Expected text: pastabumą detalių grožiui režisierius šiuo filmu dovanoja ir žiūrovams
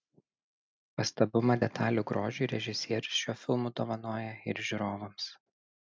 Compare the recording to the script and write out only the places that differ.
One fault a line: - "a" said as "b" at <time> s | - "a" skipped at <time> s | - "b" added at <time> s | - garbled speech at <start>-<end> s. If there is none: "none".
none